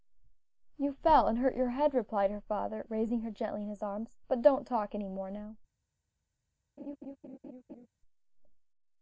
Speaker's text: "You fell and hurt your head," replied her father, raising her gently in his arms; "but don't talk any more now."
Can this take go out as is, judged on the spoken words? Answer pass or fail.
pass